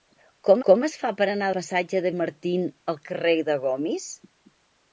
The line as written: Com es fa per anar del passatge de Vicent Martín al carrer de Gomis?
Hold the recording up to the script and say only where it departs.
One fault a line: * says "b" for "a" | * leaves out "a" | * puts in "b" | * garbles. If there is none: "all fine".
* puts in "com"
* leaves out "del"
* leaves out "Vicent"